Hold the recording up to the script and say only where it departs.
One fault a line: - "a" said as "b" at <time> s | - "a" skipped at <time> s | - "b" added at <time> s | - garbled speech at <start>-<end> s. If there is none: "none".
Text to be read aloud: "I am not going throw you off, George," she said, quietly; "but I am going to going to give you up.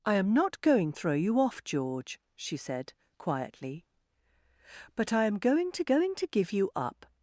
none